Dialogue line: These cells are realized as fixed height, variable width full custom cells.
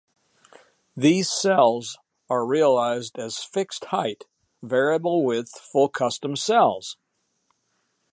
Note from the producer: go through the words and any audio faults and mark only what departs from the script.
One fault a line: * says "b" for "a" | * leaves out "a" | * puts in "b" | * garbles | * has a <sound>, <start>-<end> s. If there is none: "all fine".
all fine